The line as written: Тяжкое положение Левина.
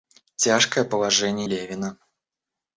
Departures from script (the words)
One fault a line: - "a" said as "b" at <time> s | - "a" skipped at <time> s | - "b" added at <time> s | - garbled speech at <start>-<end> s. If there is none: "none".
none